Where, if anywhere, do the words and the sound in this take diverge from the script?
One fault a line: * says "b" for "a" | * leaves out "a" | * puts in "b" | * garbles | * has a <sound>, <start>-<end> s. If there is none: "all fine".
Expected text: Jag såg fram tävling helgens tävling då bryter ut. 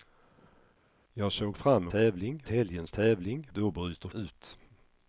all fine